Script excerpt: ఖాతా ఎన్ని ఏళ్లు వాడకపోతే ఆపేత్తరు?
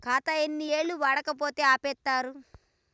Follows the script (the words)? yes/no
yes